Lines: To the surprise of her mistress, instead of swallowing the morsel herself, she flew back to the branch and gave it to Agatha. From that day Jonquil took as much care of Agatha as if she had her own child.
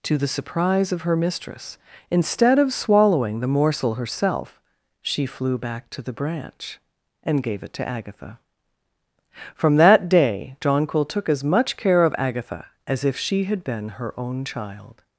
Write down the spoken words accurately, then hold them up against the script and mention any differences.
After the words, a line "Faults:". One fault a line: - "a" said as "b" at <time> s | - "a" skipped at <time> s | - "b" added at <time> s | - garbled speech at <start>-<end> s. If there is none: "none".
To the surprise of her mistress, instead of swallowing the morsel herself, she flew back to the branch and gave it to Agatha. From that day Jonquil took as much care of Agatha as if she had been her own child.
Faults:
- "been" added at 13.6 s